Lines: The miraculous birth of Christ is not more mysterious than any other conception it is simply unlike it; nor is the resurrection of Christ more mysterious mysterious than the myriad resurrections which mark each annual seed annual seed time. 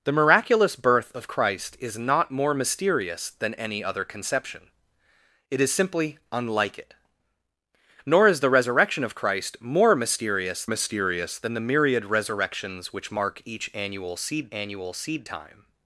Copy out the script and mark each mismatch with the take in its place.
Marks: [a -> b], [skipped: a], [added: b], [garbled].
The miraculous birth of Christ is not more mysterious than any other conception it is simply unlike it; nor is the resurrection of Christ more mysterious mysterious than the myriad resurrections which mark each annual seed annual seed time.